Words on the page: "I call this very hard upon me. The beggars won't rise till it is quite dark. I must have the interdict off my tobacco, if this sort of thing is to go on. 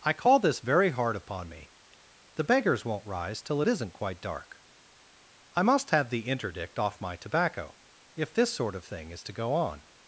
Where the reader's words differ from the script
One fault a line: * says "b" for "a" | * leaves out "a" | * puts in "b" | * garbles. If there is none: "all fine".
* says "isn't" for "is"